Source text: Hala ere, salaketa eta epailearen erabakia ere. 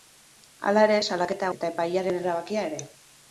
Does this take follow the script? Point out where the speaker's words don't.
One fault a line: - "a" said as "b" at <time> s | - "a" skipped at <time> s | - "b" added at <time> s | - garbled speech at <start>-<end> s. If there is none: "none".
none